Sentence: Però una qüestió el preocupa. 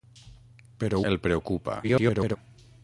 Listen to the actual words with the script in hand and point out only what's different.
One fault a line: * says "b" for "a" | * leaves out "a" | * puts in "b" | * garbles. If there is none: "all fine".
* leaves out "una qüestió"
* garbles